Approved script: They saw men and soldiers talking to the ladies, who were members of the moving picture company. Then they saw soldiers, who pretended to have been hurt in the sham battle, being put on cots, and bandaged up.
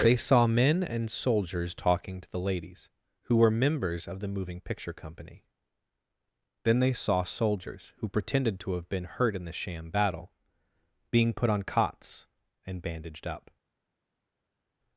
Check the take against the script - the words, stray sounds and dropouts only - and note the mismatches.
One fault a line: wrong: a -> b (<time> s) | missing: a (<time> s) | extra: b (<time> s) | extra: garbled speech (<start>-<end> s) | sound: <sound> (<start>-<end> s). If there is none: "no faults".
no faults